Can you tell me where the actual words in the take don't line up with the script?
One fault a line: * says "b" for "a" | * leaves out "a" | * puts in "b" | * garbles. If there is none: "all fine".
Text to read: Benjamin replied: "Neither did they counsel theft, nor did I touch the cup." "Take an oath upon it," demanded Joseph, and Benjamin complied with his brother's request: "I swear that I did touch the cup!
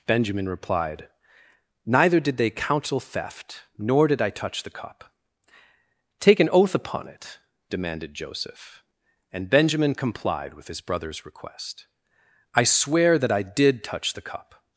all fine